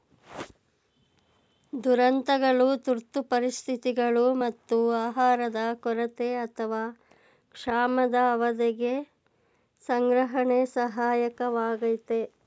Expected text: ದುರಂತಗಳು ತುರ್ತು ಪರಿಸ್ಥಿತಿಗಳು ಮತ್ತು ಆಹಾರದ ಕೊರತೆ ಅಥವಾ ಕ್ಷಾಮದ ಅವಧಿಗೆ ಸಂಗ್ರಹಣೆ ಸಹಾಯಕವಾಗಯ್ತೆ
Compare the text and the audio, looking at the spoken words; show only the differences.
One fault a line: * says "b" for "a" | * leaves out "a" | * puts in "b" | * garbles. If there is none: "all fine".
all fine